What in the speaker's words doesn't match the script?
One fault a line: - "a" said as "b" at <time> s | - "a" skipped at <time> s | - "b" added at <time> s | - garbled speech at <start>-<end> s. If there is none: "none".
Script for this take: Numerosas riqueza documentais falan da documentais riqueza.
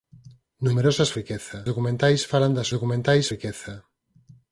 none